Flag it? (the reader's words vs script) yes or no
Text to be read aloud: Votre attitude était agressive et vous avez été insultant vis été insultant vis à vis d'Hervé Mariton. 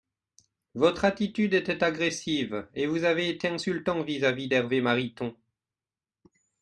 yes